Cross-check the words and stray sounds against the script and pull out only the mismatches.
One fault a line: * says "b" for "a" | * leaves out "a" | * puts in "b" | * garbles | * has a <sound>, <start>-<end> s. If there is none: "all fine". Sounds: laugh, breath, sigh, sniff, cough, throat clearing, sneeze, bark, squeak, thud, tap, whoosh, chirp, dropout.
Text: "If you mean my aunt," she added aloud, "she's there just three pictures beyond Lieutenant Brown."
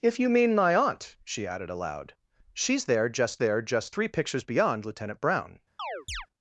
* puts in "there just"
* has a chirp, 5.8-6.3 s